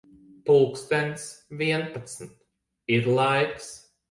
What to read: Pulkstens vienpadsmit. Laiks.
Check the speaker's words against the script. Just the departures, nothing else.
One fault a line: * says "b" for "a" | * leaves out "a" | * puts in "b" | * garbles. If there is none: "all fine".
* puts in "Ir"